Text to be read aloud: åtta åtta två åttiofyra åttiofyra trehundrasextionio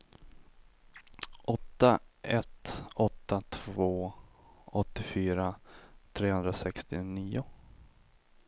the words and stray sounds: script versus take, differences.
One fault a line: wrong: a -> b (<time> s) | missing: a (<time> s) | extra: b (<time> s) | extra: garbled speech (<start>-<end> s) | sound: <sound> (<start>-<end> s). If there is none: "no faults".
extra: ett (2.2 s)
missing: åttiofyra (5.6 s)